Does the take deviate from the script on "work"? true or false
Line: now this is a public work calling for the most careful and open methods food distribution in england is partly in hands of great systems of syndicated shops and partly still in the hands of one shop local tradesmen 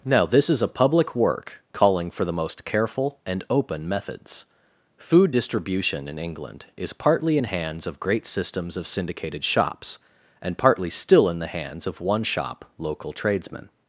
false